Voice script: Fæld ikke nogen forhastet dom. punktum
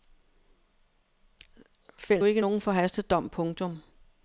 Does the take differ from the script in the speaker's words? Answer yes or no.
no